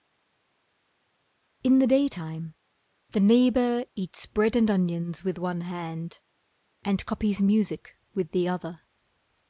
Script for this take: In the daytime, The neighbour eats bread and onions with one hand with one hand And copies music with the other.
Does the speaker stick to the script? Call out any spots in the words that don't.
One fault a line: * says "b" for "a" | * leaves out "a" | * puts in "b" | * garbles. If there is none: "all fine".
* leaves out "with one hand"